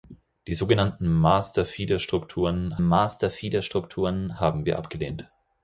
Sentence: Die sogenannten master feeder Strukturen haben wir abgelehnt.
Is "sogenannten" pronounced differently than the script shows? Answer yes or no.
no